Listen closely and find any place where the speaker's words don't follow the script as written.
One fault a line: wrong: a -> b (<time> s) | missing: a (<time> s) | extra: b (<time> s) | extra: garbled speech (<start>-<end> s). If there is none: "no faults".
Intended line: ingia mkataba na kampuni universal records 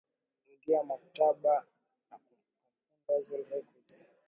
no faults